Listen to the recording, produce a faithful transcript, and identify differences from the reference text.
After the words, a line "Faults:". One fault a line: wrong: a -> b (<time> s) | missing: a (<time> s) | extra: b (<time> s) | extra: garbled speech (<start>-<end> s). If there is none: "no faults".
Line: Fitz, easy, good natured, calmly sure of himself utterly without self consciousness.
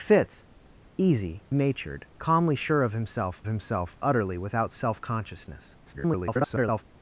Fitz, easy, natured, calmly sure of himself himself utterly without self consciousness. [garbled]
Faults:
missing: good (1.4 s)
extra: himself (3.4 s)
extra: garbled speech (5.8-6.8 s)